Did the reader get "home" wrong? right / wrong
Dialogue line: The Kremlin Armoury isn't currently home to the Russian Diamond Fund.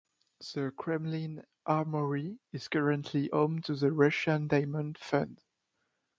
right